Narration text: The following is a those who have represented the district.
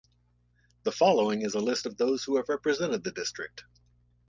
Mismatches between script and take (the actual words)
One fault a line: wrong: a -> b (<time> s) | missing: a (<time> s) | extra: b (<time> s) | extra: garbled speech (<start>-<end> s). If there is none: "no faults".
extra: list of (1.6 s)